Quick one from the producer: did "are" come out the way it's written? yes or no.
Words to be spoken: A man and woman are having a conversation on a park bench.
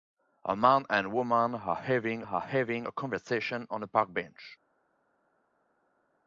yes